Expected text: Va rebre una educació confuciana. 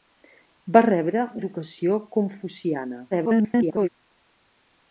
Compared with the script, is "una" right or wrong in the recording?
wrong